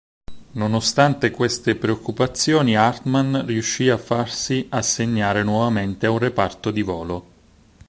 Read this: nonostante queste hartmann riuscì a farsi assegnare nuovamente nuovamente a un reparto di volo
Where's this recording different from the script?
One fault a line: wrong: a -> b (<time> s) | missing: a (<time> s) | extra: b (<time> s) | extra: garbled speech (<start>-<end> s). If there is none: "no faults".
extra: preoccupazioni (1.8 s)
missing: nuovamente (6.1 s)